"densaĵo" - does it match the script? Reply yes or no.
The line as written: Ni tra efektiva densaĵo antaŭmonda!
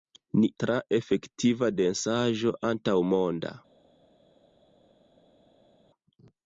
yes